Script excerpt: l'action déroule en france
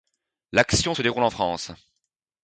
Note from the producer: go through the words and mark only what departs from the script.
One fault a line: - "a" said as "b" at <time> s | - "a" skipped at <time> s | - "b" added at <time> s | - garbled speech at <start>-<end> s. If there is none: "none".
- "se" added at 0.9 s